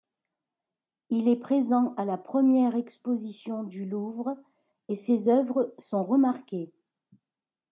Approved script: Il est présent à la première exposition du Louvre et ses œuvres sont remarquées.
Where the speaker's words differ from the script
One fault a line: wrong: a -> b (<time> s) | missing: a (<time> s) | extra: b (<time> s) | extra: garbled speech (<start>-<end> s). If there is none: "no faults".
no faults